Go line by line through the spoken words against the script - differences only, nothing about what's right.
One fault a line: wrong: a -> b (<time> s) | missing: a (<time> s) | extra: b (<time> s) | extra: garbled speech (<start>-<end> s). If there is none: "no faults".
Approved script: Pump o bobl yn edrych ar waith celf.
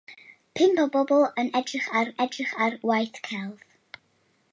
extra: edrych ar (2.2 s)